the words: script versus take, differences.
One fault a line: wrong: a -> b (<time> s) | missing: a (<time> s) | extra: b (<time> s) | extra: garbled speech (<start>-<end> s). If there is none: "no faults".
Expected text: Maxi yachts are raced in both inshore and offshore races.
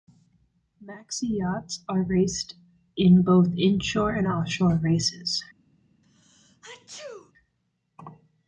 no faults